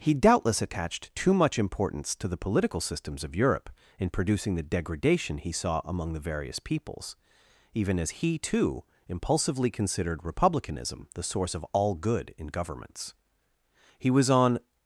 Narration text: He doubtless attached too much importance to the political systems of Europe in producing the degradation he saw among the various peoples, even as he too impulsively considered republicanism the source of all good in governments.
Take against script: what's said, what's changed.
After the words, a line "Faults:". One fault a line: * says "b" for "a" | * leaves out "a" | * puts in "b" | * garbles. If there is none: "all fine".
He doubtless attached too much importance to the political systems of Europe in producing the degradation he saw among the various peoples, even as he too impulsively considered republicanism the source of all good in governments. He was on
Faults:
* puts in "He was on"